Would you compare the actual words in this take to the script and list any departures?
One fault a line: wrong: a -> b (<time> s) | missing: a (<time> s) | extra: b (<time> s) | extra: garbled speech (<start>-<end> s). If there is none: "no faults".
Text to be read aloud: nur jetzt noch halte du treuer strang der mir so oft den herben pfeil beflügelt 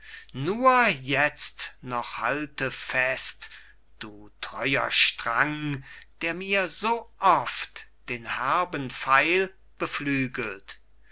extra: fest (2.7 s)